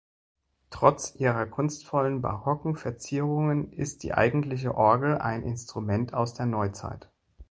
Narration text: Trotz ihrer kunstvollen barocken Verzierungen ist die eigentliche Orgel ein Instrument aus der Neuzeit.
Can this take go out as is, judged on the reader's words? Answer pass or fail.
pass